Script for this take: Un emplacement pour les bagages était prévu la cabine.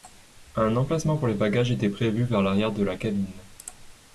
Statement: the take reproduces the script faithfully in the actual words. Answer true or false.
false